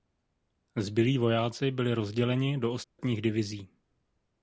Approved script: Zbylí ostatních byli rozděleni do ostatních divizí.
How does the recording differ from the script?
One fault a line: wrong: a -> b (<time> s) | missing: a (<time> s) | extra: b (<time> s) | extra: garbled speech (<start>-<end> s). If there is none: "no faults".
wrong: ostatních -> vojáci (1.2 s)